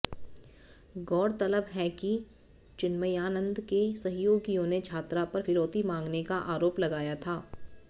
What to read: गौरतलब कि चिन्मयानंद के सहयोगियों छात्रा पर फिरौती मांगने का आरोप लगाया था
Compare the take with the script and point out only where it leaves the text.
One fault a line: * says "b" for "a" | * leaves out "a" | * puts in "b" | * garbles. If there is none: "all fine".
* puts in "है"
* puts in "ने"